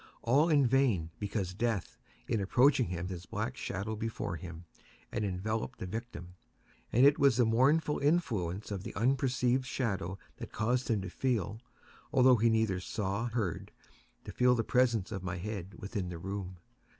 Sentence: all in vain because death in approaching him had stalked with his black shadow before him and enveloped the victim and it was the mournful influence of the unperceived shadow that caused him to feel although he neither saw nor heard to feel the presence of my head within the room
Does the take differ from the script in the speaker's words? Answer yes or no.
yes